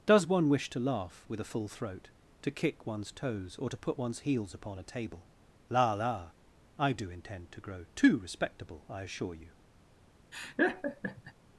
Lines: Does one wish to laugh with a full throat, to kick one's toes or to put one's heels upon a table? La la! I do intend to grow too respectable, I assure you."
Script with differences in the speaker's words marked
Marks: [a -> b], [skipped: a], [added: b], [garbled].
Does one wish to laugh with a full throat, to kick one's toes or to put one's heels upon a table? La la! I do intend to grow too respectable, I assure you."